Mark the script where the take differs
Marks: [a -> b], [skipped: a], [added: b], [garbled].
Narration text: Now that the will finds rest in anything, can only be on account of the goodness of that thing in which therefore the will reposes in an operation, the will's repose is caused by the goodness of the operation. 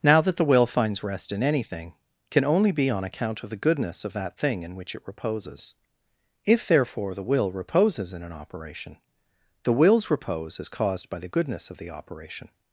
Now that the will finds rest in anything, can only be on account of the goodness of that thing in which [added: it reposes If] therefore the will reposes in an operation, the will's repose is caused by the goodness of the operation.